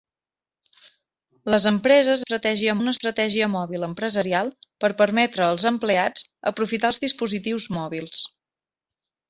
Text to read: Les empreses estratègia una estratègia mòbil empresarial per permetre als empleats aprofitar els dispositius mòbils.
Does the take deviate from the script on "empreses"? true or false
false